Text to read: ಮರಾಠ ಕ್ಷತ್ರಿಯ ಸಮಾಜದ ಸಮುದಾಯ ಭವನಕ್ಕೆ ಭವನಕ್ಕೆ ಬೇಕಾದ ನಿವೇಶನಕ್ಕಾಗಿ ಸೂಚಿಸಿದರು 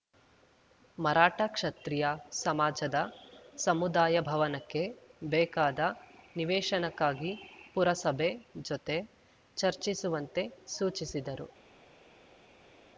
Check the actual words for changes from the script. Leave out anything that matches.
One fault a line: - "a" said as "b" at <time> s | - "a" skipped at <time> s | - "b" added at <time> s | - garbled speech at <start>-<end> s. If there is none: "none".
- "ಭವನಕ್ಕೆ" skipped at 4.8 s
- "ಪುರಸಭೆ ಜೊತೆ ಚರ್ಚಿಸುವಂತೆ" added at 7.7 s